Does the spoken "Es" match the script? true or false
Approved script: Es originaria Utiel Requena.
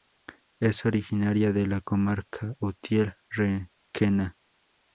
true